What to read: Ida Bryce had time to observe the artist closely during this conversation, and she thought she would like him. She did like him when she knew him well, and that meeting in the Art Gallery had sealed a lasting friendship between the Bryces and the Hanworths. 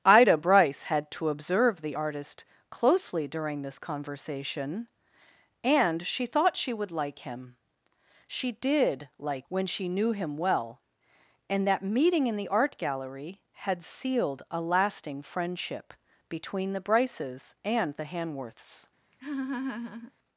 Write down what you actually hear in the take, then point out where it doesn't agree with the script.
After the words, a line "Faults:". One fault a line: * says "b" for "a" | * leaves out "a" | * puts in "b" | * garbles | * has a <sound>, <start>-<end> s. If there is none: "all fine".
Ida Bryce had to observe the artist closely during this conversation, and she thought she would like him. She did like when she knew him well, and that meeting in the Art Gallery had sealed a lasting friendship between the Bryces and the Hanworths.
Faults:
* leaves out "time"
* leaves out "him"
* has a laugh, 19.1-20.1 s